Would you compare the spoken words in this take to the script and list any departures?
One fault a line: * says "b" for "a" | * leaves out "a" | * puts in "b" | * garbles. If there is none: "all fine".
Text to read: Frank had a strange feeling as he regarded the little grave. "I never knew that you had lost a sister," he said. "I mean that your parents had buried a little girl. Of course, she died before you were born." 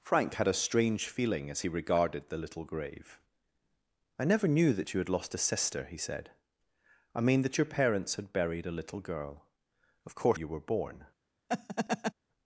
* leaves out "she died before"